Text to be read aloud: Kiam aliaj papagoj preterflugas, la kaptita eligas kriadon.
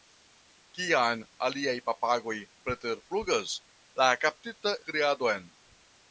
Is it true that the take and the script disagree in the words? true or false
true